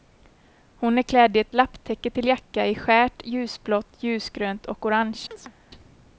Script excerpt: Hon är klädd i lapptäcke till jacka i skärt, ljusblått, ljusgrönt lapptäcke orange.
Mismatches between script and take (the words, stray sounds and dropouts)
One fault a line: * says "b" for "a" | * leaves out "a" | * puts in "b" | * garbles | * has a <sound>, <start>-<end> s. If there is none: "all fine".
* puts in "ett"
* says "och" for "lapptäcke"
* has a chirp, 5.3-5.5 s